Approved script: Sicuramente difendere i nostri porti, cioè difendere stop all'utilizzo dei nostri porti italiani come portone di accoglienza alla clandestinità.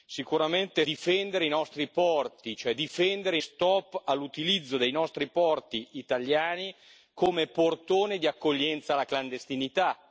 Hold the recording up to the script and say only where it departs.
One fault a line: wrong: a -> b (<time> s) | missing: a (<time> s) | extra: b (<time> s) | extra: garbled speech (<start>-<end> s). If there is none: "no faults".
no faults